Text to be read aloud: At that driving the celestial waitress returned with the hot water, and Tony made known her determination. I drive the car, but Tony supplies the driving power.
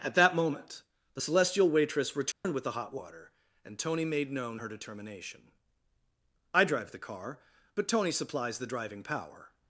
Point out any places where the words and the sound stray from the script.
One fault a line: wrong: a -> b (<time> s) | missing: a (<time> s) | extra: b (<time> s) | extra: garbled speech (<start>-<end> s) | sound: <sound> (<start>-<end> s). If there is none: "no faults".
wrong: driving -> moment (0.3 s)
sound: dropout (2.3-2.4 s)